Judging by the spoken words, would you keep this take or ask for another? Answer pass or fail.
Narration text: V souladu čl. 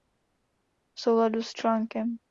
fail